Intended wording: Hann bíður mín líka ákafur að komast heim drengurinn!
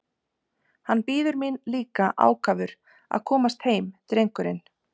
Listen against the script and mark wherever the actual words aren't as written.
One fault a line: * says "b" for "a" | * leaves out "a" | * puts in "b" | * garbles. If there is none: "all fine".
all fine